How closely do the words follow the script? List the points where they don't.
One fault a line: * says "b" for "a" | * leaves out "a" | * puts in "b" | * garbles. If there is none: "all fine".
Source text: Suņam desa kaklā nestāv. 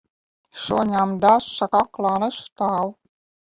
all fine